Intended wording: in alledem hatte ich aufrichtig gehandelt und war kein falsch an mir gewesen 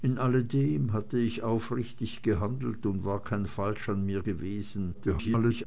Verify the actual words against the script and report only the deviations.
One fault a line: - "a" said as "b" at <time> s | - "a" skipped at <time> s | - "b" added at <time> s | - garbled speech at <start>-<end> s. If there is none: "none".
- garbled speech at 4.9-5.7 s